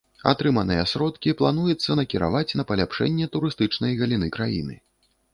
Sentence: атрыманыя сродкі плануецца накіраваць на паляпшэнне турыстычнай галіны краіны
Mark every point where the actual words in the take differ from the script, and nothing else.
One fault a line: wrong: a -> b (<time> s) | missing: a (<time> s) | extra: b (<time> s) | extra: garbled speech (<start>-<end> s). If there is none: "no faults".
no faults